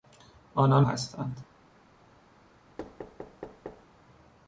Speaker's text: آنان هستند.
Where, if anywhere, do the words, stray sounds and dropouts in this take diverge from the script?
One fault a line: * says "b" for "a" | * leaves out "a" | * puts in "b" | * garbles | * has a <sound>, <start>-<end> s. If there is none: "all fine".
* has a thud, 2.8-3.9 s